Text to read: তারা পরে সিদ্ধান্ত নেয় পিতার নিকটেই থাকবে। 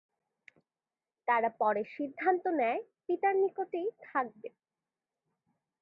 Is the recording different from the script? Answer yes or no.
no